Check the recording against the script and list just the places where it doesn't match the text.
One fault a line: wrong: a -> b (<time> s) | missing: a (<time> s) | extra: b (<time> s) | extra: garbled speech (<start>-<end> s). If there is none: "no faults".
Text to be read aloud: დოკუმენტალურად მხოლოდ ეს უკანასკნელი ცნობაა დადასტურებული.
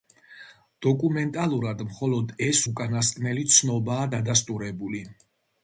no faults